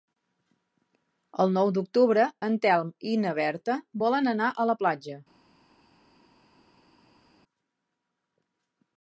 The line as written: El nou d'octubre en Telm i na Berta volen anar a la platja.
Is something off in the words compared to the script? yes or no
no